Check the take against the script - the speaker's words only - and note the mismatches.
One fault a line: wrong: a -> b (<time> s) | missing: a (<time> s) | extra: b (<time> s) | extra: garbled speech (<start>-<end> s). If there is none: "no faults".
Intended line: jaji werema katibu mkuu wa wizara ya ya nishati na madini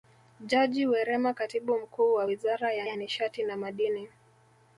no faults